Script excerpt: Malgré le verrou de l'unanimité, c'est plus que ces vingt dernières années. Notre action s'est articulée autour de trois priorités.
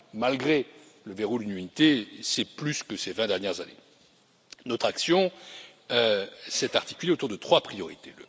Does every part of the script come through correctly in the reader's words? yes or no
yes